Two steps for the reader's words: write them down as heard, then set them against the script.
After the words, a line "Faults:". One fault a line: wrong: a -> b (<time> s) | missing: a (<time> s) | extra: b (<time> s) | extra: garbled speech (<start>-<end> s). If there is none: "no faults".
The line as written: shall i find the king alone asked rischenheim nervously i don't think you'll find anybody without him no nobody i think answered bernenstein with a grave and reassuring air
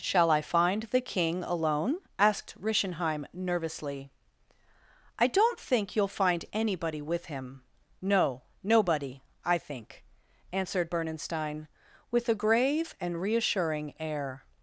shall i find the king alone asked rischenheim nervously i don't think you'll find anybody with him no nobody i think answered bernenstein with a grave and reassuring air
Faults:
wrong: without -> with (7.0 s)